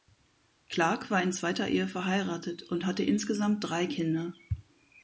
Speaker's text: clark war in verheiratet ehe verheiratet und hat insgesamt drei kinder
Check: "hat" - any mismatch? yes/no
yes